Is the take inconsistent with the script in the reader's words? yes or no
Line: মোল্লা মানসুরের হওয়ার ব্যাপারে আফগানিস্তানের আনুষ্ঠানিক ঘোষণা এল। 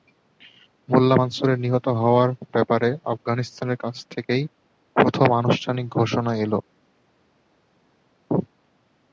yes